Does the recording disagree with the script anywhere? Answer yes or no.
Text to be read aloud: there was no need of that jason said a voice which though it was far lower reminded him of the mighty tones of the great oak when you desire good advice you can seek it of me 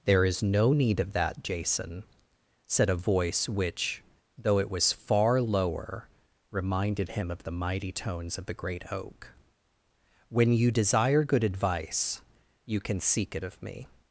yes